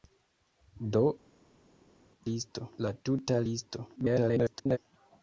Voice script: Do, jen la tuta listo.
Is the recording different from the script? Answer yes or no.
yes